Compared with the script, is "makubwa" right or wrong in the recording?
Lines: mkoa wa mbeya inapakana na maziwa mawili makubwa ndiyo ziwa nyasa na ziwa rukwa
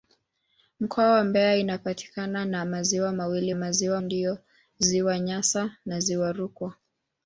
wrong